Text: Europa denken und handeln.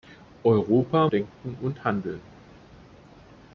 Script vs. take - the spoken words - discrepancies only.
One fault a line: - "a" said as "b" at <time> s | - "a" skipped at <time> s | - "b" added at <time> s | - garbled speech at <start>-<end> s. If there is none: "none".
none